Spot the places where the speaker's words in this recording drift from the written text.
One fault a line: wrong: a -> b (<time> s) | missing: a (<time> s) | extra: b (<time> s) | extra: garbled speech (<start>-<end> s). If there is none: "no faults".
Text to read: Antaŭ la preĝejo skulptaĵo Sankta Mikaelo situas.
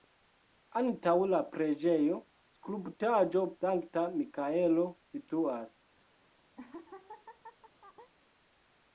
no faults